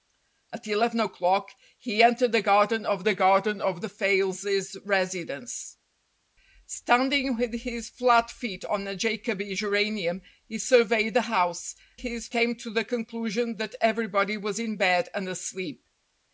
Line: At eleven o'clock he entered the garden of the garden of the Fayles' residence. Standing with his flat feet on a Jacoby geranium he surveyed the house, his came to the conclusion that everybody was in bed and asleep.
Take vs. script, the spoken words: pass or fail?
pass